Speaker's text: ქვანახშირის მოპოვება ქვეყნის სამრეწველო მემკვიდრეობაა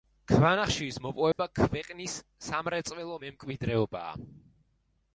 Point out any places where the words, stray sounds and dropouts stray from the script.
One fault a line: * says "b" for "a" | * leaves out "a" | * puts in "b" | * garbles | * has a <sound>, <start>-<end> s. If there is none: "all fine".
* has a dropout, 1.3-1.4 s